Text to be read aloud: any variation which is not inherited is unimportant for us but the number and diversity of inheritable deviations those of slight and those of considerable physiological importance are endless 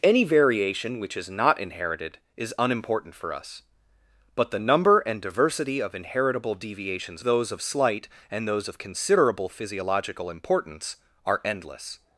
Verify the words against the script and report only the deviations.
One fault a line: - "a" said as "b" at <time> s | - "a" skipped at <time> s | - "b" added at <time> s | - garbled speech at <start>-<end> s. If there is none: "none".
none